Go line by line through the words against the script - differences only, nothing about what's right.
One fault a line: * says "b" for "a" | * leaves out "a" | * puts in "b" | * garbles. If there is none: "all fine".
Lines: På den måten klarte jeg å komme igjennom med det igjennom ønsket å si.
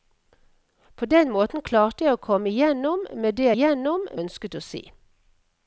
all fine